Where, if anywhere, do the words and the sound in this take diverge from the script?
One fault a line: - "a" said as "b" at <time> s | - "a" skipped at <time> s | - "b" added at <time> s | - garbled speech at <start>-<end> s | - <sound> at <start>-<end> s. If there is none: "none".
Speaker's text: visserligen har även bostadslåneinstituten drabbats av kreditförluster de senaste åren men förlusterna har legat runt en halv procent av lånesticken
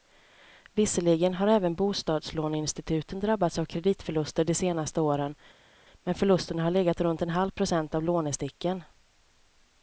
none